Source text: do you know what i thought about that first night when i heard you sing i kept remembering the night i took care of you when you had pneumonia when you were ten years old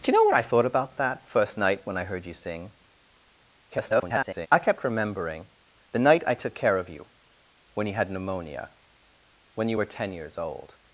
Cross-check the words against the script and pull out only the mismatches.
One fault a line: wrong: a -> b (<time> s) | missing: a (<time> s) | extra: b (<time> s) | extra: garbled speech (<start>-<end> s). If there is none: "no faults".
extra: garbled speech (3.7-4.5 s)